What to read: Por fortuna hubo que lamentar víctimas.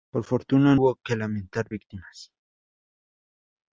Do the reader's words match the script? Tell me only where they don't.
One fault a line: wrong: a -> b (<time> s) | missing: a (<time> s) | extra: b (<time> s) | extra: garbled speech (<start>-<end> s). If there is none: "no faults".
no faults